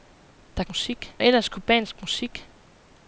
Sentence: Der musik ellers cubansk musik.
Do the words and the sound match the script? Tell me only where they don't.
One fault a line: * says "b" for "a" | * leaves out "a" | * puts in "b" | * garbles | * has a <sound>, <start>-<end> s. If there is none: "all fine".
all fine